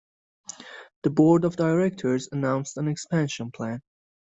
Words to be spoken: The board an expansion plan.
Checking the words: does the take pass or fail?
fail